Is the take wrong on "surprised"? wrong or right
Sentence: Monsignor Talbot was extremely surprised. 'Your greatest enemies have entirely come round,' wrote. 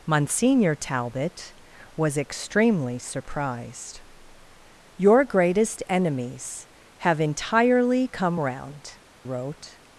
right